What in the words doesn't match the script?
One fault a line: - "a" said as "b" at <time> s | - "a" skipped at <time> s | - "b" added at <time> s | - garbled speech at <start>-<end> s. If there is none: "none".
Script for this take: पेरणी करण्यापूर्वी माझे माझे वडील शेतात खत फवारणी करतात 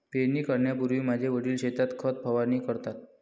- "माझे" skipped at 1.3 s